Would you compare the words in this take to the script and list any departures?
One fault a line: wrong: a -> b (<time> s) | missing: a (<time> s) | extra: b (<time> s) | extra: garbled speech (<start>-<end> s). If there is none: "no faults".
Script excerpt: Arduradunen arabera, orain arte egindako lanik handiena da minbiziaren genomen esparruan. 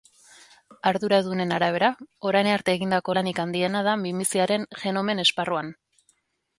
no faults